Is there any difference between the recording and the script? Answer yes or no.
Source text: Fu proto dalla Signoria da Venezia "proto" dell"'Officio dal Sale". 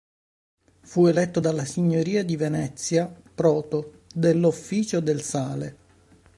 yes